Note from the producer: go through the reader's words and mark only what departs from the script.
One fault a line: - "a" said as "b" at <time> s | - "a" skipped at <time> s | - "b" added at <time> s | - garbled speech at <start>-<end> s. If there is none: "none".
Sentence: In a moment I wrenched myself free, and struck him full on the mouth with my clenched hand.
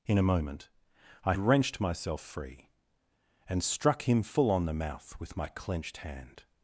none